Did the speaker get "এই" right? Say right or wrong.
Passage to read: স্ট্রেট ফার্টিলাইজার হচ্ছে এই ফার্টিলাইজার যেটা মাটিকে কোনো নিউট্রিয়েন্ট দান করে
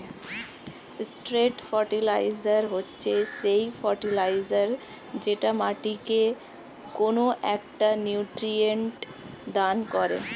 wrong